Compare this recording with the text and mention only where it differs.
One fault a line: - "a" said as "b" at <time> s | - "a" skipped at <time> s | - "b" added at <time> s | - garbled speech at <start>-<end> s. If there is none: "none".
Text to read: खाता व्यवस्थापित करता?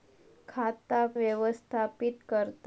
none